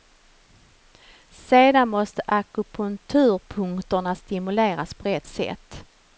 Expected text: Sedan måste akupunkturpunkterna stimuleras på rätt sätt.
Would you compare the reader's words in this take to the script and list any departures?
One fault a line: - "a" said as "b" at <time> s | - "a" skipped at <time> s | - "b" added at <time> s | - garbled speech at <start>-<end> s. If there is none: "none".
none